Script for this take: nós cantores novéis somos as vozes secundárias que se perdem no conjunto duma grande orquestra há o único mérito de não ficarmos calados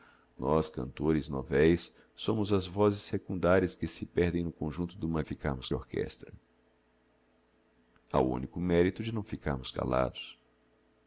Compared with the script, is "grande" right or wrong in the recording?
wrong